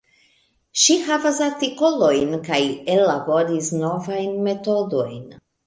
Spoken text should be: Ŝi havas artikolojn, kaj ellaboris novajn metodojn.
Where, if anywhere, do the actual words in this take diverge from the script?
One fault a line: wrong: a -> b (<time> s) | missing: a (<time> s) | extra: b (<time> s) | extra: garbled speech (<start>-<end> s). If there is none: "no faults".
no faults